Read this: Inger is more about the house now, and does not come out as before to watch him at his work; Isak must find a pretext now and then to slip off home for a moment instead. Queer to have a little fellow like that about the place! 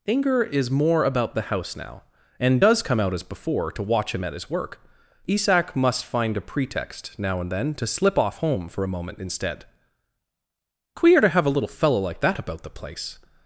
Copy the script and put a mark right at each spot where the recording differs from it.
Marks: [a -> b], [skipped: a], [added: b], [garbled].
Inger is more about the house now, and does [skipped: not] come out as before to watch him at his work; Isak must find a pretext now and then to slip off home for a moment instead. Queer to have a little fellow like that about the place!